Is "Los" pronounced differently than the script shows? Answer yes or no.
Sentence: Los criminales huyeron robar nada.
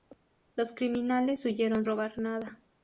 no